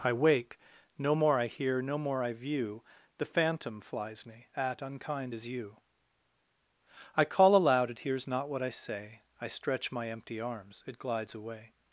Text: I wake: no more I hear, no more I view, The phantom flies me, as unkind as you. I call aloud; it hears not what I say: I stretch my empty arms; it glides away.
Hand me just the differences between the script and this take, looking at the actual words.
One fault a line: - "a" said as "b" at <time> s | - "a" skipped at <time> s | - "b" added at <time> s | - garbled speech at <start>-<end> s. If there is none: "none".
- "as" said as "at" at 4.5 s